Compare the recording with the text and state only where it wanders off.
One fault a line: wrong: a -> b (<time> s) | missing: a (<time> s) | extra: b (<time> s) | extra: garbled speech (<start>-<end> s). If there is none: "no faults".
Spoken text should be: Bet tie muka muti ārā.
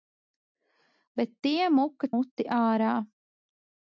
no faults